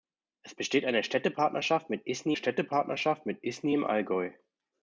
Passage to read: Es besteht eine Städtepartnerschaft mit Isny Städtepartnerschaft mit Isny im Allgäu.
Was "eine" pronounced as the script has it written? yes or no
yes